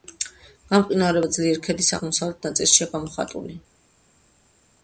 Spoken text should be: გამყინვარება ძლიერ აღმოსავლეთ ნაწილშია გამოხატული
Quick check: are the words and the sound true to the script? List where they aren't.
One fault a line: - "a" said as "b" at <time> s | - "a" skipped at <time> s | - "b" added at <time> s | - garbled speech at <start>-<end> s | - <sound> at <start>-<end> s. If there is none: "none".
- "ქედის" added at 1.7 s